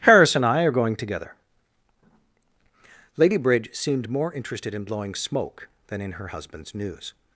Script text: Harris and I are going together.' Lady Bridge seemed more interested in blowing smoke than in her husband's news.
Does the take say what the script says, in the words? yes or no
yes